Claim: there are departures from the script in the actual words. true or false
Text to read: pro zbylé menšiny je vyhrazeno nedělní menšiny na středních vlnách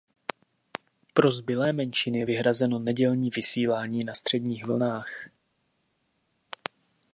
true